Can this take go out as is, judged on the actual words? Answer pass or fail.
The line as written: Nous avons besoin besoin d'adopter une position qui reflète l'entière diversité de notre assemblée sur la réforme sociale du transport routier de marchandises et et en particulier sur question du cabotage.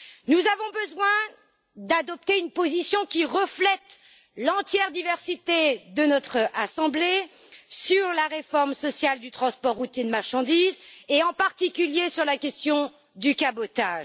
fail